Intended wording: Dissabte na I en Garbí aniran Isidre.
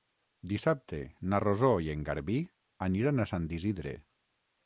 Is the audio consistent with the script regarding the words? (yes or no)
no